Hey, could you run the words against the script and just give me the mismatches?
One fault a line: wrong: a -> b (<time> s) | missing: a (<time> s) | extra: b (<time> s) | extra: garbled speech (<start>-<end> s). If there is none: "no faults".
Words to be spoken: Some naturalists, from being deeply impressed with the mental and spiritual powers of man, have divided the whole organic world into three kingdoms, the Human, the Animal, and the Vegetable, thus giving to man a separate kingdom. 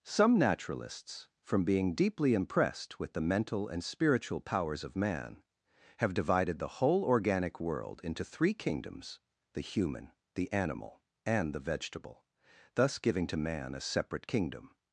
no faults